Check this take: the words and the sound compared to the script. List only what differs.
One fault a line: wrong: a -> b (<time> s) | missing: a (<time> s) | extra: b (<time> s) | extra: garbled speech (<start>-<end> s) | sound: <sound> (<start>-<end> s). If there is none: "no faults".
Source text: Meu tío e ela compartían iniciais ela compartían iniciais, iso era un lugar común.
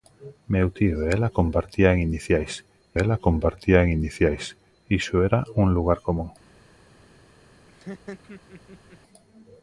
sound: laugh (7.7-9.0 s)